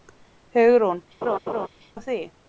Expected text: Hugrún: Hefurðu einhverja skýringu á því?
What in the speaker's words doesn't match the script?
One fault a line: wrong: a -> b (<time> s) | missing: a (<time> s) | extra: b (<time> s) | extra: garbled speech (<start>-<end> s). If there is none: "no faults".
missing: Hefurðu einhverja skýringu (1.0 s)